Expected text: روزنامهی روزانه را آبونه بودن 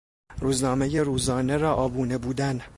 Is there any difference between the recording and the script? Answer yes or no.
no